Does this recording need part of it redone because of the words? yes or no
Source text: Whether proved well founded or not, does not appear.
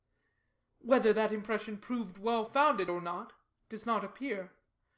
yes